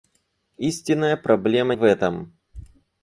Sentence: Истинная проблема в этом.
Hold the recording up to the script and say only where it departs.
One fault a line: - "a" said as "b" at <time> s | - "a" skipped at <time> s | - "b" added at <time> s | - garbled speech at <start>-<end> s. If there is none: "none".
none